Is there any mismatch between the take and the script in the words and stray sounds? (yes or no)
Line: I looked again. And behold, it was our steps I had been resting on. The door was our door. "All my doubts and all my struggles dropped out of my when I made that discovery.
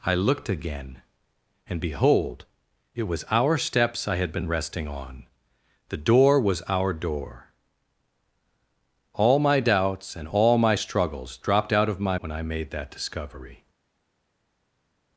no